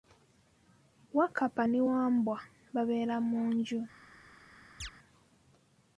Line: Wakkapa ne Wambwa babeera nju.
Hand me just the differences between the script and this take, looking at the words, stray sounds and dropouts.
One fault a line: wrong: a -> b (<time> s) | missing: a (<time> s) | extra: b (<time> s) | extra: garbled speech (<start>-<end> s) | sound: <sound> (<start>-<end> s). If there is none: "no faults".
extra: mu (3.3 s)
sound: chirp (4.8-4.9 s)